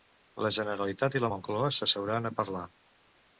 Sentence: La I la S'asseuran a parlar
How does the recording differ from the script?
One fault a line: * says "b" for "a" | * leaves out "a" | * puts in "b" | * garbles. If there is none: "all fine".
* puts in "Generalitat"
* puts in "Moncloa"